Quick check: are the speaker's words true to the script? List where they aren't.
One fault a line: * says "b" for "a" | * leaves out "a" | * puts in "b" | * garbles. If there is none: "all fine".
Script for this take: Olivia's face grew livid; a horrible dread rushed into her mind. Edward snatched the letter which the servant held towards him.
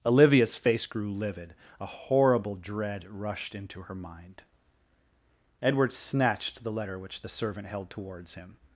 all fine